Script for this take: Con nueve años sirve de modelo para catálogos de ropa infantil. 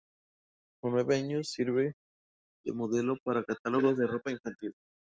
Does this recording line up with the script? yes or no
yes